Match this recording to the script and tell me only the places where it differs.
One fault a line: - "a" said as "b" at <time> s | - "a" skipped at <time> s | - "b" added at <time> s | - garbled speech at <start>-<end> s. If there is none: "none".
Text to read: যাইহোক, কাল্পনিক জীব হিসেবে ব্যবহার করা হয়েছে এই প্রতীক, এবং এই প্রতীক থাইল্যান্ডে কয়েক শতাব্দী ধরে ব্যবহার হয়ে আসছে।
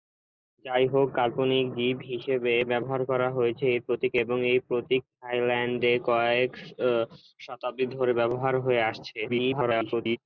- garbled speech at 9.3-10.2 s